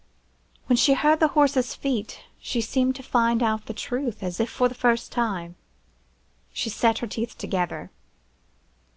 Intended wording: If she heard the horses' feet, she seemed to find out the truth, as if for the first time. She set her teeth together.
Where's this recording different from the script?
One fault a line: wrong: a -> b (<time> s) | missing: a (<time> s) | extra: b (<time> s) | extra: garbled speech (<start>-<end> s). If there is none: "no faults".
wrong: If -> When (0.7 s)